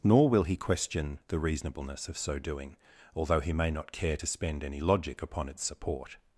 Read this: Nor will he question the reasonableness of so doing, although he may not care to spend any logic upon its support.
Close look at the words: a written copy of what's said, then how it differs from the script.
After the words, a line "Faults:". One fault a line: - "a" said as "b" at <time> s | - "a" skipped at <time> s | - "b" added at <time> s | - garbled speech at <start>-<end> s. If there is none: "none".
Nor will he question the reasonableness of so doing, although he may not care to spend any logic upon its support.
Faults:
none